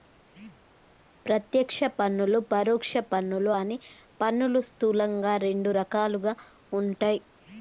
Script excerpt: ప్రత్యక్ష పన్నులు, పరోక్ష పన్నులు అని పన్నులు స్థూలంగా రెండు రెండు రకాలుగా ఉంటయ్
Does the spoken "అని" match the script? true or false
true